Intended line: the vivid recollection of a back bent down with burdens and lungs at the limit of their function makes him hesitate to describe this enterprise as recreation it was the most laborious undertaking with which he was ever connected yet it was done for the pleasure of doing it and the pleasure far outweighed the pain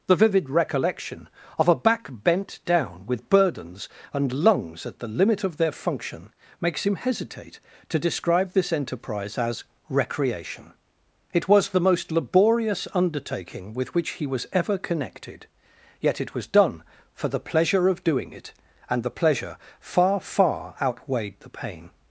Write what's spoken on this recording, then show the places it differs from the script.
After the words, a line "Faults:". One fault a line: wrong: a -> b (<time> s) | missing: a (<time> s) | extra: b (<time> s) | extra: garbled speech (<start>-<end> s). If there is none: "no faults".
the vivid recollection of a back bent down with burdens and lungs at the limit of their function makes him hesitate to describe this enterprise as recreation it was the most laborious undertaking with which he was ever connected yet it was done for the pleasure of doing it and the pleasure far far outweighed the pain
Faults:
extra: far (20.2 s)